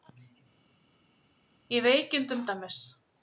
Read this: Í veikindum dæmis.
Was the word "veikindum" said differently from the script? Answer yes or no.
no